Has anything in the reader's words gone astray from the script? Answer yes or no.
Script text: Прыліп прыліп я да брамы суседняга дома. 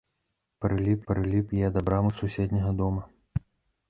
no